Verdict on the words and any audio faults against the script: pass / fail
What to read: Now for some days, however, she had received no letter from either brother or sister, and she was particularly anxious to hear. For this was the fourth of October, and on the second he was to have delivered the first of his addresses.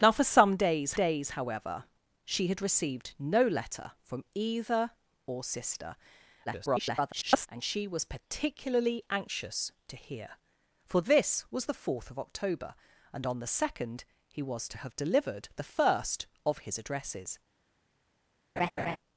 fail